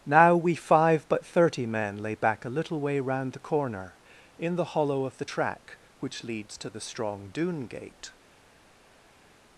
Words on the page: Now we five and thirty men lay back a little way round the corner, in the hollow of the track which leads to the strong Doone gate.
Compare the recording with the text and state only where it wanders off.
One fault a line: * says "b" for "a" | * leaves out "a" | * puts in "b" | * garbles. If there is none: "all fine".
* says "but" for "and"